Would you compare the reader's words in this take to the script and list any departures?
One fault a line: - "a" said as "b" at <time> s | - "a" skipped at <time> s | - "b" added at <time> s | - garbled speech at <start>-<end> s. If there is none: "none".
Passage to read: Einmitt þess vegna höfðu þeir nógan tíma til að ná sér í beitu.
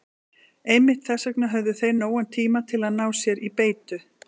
none